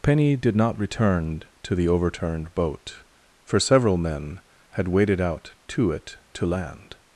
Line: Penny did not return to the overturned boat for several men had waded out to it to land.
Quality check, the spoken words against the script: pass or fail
pass